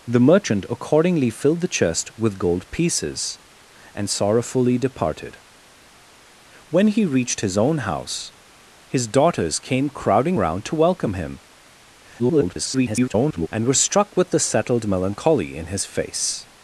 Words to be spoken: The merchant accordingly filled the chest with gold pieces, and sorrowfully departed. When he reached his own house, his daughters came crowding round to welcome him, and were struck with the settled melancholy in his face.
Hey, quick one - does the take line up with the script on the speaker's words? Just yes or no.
no